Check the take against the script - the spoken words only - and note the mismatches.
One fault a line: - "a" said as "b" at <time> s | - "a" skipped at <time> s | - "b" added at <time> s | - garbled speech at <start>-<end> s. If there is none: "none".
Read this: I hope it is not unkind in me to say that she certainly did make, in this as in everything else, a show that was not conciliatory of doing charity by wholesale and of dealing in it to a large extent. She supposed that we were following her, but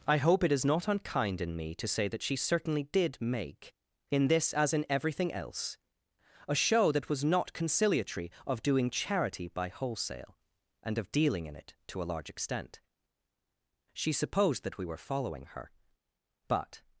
none